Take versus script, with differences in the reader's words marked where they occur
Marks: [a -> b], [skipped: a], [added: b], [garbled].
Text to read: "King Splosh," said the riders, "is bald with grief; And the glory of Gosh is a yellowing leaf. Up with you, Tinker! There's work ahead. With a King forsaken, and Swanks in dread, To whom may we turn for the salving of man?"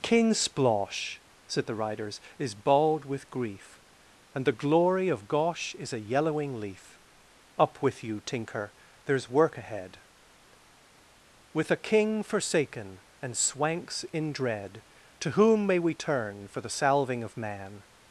"King Splosh," said the riders, "is bald with grief; And the glory of Gosh is a yellowing leaf. Up with you, Tinker! There's work ahead. With a King forsaken, and Swanks in dread, To whom may we turn for the salving of man?"